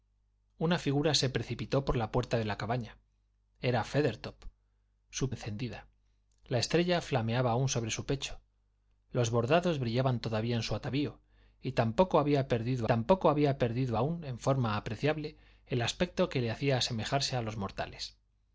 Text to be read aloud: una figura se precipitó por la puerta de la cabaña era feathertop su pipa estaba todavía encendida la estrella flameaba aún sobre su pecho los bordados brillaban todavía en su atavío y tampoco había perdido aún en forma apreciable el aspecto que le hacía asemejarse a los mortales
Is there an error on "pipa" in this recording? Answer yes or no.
yes